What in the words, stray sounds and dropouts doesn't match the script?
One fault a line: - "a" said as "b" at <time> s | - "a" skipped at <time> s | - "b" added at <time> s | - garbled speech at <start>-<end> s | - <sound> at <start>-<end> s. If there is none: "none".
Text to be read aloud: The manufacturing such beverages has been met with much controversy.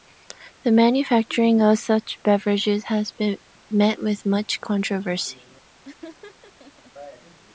- "of" added at 1.6 s
- laugh at 5.8-6.9 s